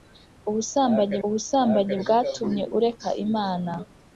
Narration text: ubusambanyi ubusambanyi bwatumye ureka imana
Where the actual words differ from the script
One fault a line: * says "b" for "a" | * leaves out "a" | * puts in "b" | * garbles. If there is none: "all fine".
all fine